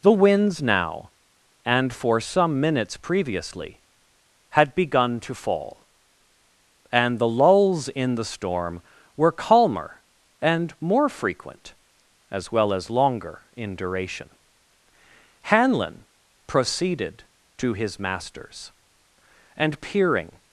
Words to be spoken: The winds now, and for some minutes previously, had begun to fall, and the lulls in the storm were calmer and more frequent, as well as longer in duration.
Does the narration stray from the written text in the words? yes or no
yes